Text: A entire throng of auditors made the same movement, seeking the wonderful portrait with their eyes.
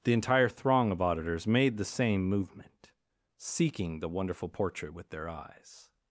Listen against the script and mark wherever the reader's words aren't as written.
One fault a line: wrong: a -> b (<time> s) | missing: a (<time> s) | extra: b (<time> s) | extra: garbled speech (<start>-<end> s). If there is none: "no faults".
wrong: A -> The (0.0 s)